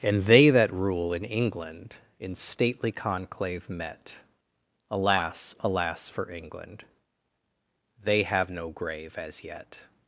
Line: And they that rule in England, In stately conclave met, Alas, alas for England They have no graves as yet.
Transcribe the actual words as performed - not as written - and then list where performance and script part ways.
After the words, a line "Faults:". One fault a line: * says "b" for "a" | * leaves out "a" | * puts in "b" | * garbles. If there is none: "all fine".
And they that rule in England, In stately conclave met, Alas, alas for England They have no grave as yet.
Faults:
* says "grave" for "graves"